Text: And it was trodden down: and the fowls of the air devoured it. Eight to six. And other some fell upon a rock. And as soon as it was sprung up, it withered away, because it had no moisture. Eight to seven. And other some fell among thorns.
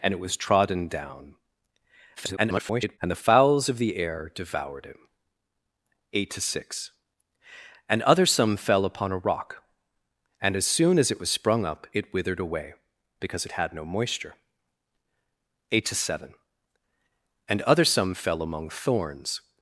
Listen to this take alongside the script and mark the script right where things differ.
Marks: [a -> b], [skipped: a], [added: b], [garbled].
And it was trodden down: [garbled] and the fowls of the air devoured it. Eight to six. And other some fell upon a rock. And as soon as it was sprung up, it withered away, because it had no moisture. Eight to seven. And other some fell among thorns.